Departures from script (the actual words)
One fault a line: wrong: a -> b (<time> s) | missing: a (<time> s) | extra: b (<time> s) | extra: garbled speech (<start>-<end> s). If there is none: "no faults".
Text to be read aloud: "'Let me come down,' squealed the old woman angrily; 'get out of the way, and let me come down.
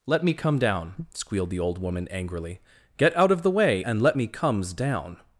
wrong: come -> comes (4.3 s)